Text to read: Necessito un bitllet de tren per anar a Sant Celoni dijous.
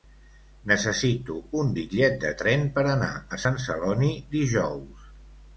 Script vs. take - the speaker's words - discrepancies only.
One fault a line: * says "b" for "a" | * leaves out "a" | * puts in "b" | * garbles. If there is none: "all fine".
all fine